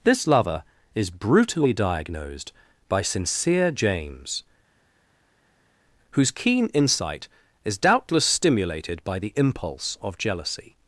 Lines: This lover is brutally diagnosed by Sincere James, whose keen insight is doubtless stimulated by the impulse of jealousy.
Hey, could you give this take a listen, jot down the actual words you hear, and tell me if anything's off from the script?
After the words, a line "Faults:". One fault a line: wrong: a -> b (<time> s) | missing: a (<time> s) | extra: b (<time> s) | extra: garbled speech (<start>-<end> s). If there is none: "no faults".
This lover is brutally diagnosed by Sincere James, whose keen insight is doubtless stimulated by the impulse of jealousy.
Faults:
no faults